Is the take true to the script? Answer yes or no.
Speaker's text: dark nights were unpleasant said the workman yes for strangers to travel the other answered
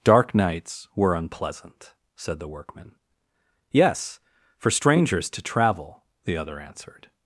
yes